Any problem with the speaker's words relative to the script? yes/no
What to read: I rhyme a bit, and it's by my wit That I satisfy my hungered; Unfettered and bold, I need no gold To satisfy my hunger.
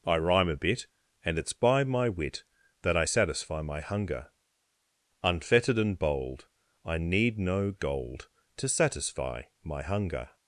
yes